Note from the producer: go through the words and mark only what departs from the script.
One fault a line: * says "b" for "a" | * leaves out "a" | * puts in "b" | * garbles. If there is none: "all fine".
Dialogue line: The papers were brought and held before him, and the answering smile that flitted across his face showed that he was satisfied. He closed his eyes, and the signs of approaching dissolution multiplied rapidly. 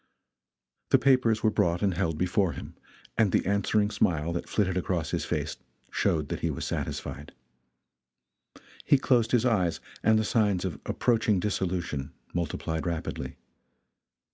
all fine